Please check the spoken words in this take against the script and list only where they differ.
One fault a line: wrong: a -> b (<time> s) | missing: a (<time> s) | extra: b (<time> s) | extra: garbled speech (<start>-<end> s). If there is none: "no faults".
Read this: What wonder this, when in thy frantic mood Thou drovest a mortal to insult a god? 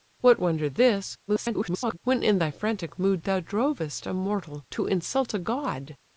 extra: garbled speech (1.3-2.0 s)